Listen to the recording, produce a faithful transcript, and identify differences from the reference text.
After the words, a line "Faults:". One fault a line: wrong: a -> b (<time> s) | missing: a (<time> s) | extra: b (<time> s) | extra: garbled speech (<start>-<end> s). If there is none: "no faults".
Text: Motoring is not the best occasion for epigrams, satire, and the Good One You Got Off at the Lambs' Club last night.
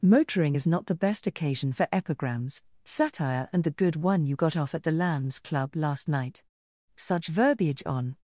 Motoring is not the best occasion for epigrams, satire, and the Good One You Got Off at the Lambs' Club last night. Such verbiage on
Faults:
extra: Such verbiage on (7.0 s)